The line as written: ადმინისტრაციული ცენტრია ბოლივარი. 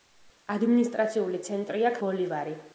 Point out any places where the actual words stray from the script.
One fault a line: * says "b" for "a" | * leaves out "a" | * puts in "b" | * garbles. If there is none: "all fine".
all fine